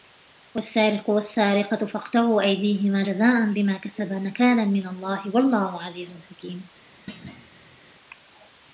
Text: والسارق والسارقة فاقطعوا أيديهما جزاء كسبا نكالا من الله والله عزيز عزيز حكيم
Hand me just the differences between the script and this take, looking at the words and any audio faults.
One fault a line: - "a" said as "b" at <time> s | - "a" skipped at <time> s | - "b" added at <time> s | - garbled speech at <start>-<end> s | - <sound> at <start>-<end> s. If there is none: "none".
- "بما" added at 3.5 s
- "عزيز" skipped at 6.2 s
- thud at 7.1-7.8 s